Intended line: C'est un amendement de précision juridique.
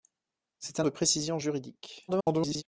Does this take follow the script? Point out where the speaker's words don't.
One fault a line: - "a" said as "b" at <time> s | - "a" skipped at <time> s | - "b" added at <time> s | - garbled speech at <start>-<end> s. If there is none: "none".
- "amendement" skipped at 0.8 s
- garbled speech at 2.1-2.6 s